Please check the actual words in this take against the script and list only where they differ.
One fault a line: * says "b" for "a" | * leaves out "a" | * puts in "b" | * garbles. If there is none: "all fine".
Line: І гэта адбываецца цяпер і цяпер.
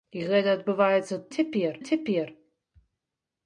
all fine